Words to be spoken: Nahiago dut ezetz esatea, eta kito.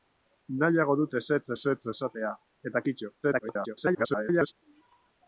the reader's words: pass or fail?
fail